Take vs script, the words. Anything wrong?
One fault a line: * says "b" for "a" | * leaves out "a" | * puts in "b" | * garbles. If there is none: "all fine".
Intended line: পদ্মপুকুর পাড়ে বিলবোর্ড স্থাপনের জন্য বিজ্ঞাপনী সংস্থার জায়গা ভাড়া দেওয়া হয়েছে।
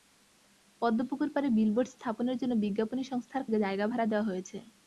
all fine